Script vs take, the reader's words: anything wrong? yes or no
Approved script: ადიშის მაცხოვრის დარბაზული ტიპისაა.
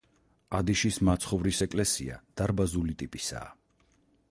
yes